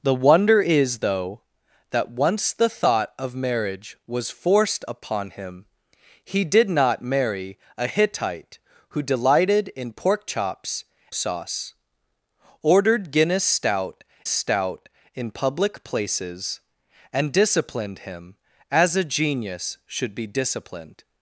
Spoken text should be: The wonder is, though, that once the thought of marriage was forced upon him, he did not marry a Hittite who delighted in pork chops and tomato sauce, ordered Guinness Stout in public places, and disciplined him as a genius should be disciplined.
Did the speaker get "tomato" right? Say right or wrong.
wrong